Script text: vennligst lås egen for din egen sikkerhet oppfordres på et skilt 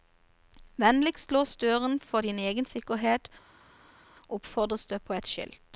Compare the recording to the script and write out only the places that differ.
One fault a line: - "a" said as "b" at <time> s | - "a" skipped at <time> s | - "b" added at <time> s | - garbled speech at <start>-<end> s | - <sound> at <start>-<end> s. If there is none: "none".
- "egen" said as "døren" at 1.6 s
- "det" added at 4.9 s